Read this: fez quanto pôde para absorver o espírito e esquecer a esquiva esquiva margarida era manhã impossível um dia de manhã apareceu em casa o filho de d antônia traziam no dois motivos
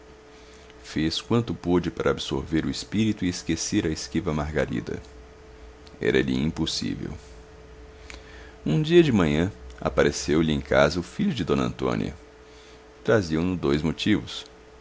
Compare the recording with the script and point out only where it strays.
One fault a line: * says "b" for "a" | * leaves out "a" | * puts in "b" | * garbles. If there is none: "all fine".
* leaves out "esquiva"
* says "lhe" for "manhã"
* puts in "lhe"